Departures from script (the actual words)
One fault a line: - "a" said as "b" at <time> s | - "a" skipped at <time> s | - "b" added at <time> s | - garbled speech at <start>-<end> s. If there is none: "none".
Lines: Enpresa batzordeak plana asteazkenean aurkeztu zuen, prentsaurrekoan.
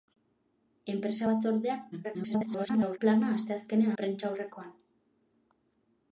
- garbled speech at 1.9-3.0 s
- "aurkeztu zuen" skipped at 3.9 s